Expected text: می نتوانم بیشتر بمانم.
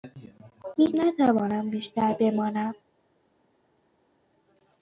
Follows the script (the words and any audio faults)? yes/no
yes